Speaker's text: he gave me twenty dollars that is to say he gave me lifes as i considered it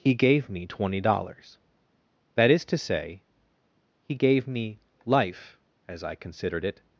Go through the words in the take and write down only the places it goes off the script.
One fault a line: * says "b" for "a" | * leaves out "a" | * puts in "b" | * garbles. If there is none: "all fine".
* says "life" for "lifes"